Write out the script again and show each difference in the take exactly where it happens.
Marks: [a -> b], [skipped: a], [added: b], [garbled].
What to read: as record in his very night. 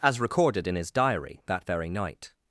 as [record -> recorded] in his [added: diary that] very night.